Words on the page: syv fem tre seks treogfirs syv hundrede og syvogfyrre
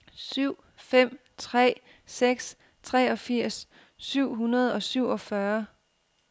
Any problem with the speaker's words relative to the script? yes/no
no